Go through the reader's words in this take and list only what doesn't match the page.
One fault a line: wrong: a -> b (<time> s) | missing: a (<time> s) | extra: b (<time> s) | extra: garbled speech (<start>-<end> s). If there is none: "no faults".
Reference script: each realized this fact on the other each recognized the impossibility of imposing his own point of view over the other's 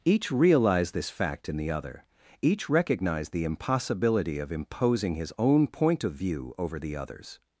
wrong: on -> in (1.5 s)